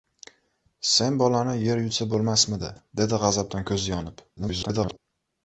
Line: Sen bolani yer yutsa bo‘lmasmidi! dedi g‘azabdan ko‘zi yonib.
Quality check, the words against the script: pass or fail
fail